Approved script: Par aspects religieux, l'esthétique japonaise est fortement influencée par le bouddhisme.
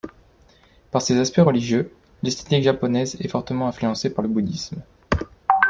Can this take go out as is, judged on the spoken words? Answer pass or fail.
fail